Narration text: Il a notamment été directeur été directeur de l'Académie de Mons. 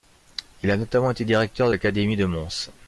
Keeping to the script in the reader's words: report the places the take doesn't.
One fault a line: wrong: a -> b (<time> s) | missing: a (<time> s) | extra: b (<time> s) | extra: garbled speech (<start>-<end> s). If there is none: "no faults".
missing: été directeur (1.7 s)